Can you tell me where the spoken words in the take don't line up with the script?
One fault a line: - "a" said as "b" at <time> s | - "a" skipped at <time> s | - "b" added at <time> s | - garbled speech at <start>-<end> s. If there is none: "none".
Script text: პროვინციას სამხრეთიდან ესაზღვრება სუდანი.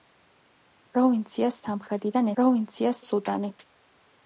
- "ესაზღვრება" said as "პროვინციას" at 2.4 s